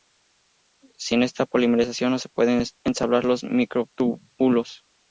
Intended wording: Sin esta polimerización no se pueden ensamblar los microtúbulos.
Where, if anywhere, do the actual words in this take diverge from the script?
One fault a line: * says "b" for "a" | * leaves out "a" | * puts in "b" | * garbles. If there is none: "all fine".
all fine